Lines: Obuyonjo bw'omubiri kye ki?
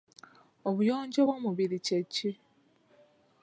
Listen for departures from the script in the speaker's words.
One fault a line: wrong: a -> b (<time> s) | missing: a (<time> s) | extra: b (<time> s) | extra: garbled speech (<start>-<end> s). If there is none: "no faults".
no faults